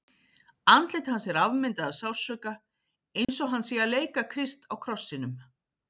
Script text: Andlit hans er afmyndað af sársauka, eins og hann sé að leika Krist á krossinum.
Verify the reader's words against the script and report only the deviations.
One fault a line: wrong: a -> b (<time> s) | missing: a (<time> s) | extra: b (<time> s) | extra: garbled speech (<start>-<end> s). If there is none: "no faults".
no faults